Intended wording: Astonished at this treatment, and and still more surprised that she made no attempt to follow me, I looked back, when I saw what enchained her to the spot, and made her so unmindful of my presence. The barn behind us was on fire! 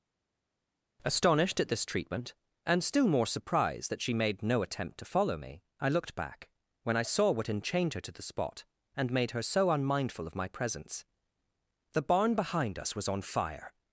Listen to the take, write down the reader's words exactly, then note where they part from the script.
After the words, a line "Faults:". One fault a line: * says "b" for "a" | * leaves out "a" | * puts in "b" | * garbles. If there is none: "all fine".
Astonished at this treatment, and still more surprised that she made no attempt to follow me, I looked back, when I saw what enchained her to the spot, and made her so unmindful of my presence. The barn behind us was on fire!
Faults:
* leaves out "and"